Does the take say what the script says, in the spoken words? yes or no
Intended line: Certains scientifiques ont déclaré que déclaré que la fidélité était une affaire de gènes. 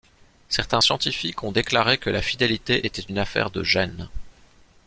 no